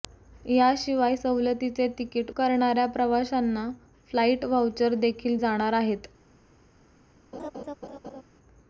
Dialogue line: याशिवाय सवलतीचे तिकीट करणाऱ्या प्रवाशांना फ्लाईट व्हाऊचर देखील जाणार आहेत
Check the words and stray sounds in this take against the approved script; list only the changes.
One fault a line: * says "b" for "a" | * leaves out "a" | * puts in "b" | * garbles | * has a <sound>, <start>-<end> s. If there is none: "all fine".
* has a laugh, 7.3-8.2 s